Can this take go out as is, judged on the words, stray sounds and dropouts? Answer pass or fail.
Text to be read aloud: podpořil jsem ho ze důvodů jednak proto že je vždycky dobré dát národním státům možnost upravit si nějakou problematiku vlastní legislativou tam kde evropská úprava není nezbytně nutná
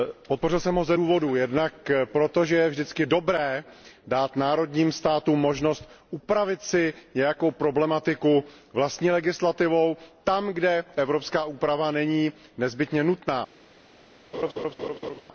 fail